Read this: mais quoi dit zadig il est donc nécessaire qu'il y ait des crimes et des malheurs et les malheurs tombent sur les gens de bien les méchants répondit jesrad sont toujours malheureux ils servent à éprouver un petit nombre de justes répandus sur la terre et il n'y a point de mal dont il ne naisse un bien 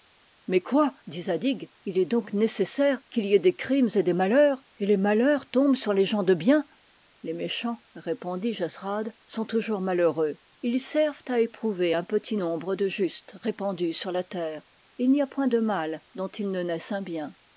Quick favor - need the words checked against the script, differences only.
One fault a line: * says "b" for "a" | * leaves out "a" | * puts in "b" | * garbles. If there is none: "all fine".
all fine